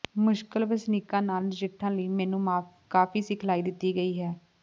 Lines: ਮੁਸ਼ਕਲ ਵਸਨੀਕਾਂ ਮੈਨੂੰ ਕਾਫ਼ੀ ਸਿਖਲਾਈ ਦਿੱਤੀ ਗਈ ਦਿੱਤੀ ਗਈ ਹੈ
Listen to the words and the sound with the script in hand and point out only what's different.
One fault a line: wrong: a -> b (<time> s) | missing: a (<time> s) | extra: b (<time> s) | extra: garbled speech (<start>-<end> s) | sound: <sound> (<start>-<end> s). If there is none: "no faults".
extra: ਨਾਲ ਨਜਿੱਠਣ ਲਈ (1.2 s)
missing: ਦਿੱਤੀ ਗਈ (4.2 s)